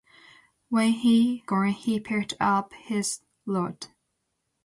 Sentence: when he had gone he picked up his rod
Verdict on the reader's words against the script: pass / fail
fail